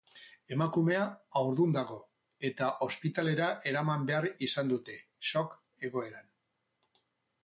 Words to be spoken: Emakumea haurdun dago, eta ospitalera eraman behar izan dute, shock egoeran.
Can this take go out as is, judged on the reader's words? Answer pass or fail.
pass